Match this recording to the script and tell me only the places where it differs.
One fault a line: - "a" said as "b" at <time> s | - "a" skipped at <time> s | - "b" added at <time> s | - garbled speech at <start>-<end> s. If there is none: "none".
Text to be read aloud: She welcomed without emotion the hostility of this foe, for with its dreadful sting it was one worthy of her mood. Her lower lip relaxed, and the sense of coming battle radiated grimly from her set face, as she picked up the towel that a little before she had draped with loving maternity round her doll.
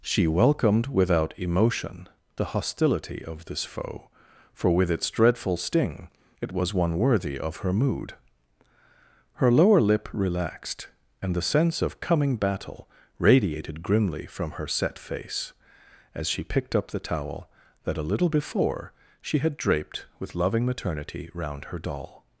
none